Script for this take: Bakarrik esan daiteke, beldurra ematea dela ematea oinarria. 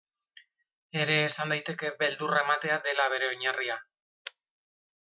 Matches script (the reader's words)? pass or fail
fail